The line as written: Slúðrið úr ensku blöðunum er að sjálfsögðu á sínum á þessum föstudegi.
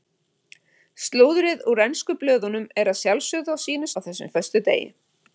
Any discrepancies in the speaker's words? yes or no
no